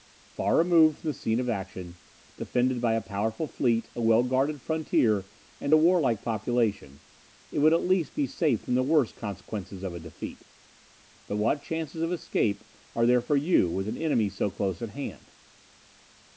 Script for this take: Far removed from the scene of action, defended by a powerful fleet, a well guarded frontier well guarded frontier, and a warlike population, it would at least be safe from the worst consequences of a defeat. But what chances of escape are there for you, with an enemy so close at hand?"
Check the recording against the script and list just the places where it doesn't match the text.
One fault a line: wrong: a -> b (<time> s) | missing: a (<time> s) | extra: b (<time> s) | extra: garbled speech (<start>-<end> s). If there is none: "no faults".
missing: well guarded frontier (5.3 s)